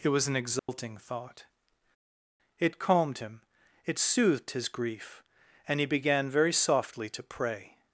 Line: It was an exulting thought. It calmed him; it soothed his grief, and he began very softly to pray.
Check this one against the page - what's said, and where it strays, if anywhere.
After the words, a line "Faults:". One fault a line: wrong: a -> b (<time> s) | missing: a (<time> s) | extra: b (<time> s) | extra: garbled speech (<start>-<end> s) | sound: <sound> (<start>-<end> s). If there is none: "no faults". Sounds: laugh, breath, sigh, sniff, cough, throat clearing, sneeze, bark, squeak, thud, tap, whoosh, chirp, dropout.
It was an exulting thought. It calmed him; it soothed his grief, and he began very softly to pray.
Faults:
sound: dropout (0.6-0.7 s)